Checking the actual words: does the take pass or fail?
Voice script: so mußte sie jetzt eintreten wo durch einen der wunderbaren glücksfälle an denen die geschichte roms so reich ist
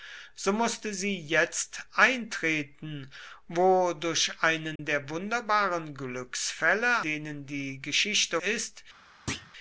fail